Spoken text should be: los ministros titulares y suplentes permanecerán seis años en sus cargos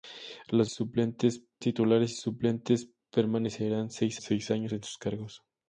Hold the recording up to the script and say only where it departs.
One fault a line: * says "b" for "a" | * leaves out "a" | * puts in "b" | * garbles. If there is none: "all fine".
* says "suplentes" for "ministros"
* puts in "seis"